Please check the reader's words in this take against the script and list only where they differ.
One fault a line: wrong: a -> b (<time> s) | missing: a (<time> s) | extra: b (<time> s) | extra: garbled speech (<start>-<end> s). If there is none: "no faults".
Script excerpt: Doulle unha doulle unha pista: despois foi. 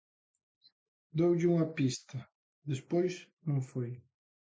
missing: doulle unha (1.7 s)
extra: non (3.5 s)